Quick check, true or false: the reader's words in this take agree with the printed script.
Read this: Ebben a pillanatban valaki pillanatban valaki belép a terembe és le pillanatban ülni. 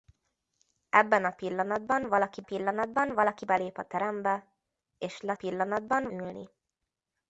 true